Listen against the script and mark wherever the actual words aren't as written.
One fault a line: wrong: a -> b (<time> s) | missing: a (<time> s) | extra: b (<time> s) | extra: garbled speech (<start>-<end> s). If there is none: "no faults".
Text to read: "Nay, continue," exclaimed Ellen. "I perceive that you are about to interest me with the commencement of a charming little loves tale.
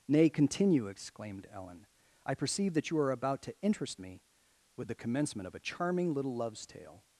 no faults